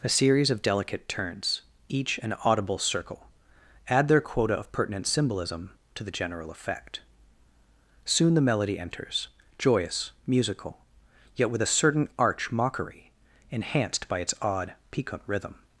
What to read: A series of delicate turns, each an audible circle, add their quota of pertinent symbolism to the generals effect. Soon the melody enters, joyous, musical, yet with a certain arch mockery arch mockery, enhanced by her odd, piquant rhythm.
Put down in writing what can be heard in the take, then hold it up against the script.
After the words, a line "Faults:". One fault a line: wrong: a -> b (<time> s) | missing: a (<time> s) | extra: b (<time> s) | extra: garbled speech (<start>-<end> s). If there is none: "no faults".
A series of delicate turns, each an audible circle, add their quota of pertinent symbolism to the general effect. Soon the melody enters, joyous, musical, yet with a certain arch mockery, enhanced by its odd, piquant rhythm.
Faults:
wrong: generals -> general (6.1 s)
missing: arch mockery (13.1 s)
wrong: her -> its (14.2 s)